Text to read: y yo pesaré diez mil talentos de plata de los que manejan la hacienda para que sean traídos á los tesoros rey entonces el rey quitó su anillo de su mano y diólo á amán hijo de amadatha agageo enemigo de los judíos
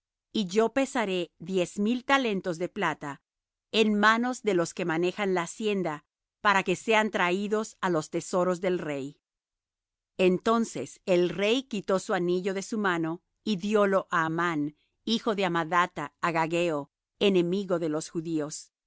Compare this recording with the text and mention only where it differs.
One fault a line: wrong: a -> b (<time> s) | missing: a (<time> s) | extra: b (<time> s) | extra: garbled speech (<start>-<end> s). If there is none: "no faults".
extra: en manos (3.7 s)
extra: del (8.6 s)